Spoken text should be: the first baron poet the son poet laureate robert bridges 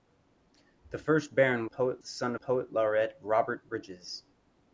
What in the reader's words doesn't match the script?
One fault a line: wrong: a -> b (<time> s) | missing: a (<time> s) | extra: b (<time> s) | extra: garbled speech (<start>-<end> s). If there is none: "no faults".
no faults